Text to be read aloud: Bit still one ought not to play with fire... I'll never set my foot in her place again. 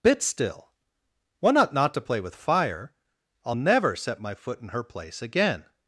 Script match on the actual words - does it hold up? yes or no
yes